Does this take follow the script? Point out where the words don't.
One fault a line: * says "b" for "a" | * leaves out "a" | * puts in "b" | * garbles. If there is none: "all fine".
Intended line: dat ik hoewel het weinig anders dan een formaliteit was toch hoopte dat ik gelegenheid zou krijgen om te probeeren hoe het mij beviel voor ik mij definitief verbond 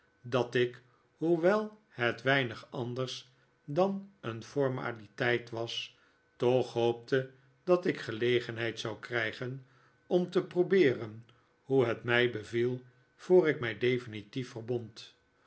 all fine